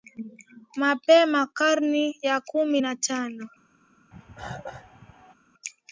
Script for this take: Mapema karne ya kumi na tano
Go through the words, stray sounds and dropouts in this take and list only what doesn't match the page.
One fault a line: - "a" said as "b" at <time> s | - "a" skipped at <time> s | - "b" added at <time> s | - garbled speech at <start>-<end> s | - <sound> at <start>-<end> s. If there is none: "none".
- cough at 4.1-5.3 s